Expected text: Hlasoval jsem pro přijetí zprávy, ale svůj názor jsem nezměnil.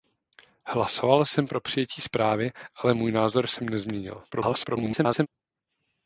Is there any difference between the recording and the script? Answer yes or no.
yes